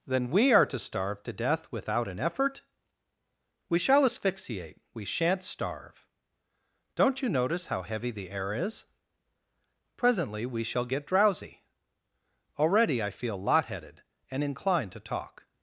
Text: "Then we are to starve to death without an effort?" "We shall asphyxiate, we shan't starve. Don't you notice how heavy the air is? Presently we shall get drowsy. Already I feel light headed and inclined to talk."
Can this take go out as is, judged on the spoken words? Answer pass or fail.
fail